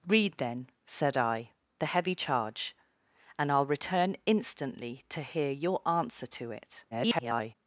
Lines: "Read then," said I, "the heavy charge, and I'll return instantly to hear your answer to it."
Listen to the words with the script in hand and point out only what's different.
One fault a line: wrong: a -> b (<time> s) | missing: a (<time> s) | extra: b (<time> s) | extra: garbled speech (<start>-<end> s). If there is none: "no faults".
extra: garbled speech (6.9-7.5 s)